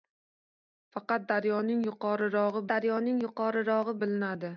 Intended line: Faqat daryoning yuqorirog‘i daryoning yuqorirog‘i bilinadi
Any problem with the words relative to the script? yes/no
no